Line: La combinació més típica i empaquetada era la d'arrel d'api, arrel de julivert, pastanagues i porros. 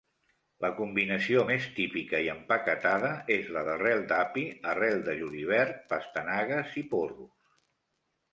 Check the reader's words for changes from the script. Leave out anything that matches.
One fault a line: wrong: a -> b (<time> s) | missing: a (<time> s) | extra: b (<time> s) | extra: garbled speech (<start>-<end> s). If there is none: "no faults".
wrong: era -> és (3.4 s)